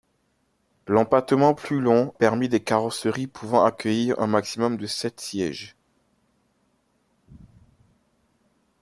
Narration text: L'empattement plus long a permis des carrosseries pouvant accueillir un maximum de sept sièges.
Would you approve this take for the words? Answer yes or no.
no